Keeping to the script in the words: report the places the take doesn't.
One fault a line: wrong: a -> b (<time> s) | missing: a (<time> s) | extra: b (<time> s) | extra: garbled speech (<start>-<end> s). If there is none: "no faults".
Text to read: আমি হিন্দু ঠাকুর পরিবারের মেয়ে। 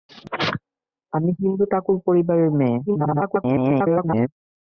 extra: garbled speech (2.9-4.3 s)